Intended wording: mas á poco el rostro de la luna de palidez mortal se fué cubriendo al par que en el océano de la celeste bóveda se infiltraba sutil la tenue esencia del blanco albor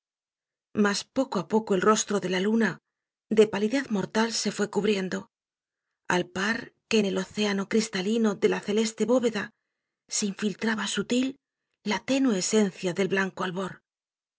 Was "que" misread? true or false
false